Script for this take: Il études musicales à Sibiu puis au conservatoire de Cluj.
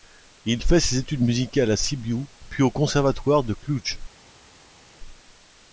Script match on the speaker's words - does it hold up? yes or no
no